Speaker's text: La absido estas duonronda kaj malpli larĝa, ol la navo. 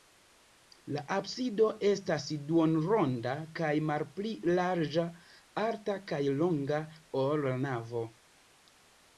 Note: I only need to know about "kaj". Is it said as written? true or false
true